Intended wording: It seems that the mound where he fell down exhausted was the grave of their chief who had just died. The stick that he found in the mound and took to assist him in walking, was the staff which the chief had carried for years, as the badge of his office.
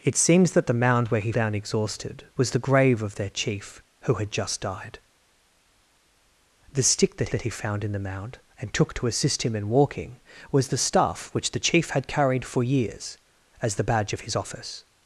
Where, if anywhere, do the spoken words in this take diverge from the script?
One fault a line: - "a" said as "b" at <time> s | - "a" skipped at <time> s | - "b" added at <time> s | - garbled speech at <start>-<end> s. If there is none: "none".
- "fell" skipped at 1.3 s
- "that" added at 7.3 s